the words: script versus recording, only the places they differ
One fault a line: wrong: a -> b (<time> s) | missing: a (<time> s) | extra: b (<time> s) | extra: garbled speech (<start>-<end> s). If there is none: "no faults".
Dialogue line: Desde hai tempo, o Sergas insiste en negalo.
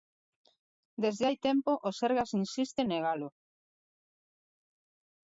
no faults